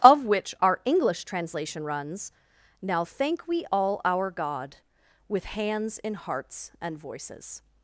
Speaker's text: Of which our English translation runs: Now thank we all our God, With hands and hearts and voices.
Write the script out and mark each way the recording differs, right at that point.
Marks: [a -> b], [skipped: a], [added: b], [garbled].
Of which our English translation runs: Now thank we all our God, With hands [and -> in] hearts and voices.